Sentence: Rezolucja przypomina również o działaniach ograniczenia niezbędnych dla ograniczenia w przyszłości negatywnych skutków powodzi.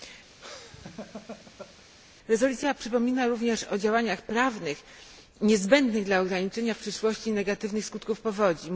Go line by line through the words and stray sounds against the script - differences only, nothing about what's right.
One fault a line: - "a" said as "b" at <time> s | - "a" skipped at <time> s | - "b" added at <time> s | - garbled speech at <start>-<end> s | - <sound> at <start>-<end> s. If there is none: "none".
- laugh at 0.4-1.8 s
- "ograniczenia" said as "prawnych" at 4.2 s